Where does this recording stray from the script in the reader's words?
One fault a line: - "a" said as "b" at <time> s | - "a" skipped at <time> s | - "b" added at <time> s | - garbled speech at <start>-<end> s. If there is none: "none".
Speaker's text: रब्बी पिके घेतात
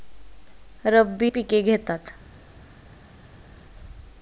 none